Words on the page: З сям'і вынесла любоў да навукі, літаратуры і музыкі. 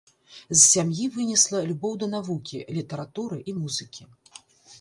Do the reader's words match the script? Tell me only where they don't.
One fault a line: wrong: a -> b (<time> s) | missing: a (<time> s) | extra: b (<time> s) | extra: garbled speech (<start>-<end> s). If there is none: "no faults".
no faults